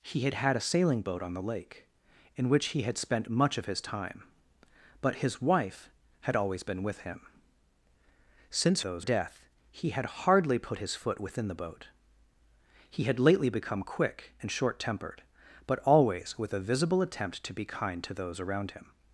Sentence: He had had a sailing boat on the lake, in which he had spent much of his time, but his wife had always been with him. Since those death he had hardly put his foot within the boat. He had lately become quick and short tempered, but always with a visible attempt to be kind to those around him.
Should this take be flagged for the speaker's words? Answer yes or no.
no